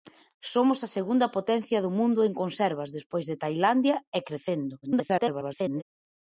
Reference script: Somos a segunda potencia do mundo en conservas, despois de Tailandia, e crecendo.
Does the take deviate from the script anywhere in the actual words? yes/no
yes